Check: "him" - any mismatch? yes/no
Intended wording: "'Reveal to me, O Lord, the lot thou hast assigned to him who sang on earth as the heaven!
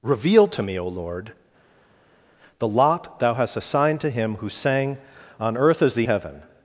no